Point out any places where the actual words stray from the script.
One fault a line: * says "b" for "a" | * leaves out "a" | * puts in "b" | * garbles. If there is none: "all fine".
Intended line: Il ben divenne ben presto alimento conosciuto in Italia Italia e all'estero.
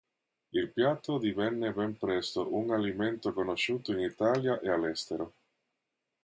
* says "piatto" for "ben"
* puts in "un"
* leaves out "Italia"